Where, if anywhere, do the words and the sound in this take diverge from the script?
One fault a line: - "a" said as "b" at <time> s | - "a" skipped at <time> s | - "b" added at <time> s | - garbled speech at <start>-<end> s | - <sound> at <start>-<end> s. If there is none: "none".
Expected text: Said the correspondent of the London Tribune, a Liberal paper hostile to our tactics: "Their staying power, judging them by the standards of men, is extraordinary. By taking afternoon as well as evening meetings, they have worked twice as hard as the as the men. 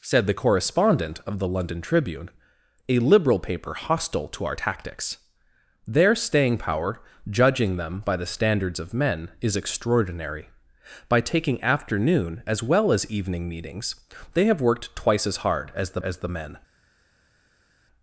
none